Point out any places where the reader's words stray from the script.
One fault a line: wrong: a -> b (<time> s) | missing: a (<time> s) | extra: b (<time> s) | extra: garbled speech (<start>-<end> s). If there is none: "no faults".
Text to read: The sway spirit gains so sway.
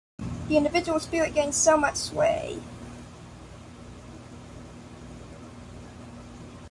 wrong: sway -> individual (0.6 s)
extra: much (1.8 s)